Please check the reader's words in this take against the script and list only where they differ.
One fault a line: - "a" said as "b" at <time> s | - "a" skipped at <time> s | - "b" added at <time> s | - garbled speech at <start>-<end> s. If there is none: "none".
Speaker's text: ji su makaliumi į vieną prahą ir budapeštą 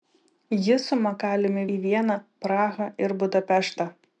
none